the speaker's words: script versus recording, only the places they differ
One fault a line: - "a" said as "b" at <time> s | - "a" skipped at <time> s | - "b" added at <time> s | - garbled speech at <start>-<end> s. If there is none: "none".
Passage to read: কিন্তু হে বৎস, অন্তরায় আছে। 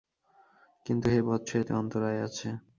- "এতে" added at 1.6 s